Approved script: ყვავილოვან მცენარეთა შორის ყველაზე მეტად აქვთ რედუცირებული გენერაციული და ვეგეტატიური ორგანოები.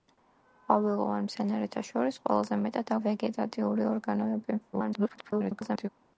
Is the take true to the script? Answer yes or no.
no